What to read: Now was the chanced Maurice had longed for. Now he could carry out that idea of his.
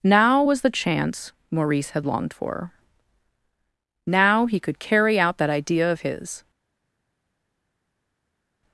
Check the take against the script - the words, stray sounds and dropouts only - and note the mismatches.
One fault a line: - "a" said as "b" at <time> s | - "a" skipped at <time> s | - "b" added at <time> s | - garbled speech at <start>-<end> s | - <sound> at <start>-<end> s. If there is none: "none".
- "chanced" said as "chance" at 0.7 s